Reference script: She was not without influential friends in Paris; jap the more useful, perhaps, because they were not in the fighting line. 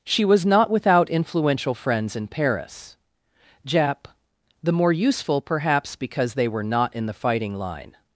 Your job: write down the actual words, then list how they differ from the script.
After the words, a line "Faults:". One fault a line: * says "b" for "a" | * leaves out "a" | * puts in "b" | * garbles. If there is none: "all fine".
She was not without influential friends in Paris; jap the more useful, perhaps, because they were not in the fighting line.
Faults:
all fine